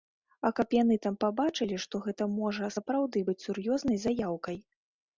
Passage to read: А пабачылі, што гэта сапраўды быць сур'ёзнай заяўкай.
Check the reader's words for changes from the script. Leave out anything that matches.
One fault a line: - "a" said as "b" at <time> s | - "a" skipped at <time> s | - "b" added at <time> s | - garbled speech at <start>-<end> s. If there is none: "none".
- "каб яны там" added at 0.6 s
- "можа" added at 2.4 s